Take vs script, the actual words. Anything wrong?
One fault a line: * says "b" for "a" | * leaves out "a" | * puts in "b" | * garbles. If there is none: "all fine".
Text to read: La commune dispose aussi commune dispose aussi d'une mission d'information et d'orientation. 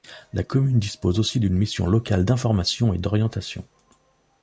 * leaves out "commune dispose aussi"
* puts in "locale"